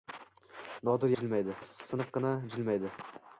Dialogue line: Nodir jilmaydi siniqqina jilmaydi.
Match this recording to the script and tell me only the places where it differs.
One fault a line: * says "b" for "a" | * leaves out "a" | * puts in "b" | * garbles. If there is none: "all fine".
all fine